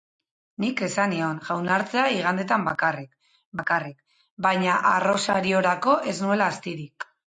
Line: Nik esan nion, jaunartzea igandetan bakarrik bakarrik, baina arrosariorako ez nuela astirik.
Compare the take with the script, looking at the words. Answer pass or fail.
pass